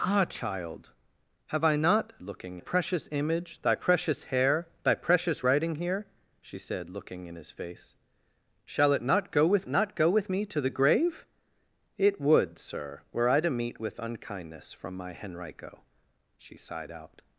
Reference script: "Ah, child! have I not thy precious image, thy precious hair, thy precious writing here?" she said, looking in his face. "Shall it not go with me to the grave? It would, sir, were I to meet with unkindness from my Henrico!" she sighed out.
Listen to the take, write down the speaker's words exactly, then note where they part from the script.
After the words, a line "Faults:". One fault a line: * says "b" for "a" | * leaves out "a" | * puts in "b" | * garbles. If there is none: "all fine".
"Ah, child! have I not looking precious image, thy precious hair, thy precious writing here?" she said, looking in his face. "Shall it not go with not go with me to the grave? It would, sir, were I to meet with unkindness from my Henrico!" she sighed out.
Faults:
* says "looking" for "thy"
* puts in "not go with"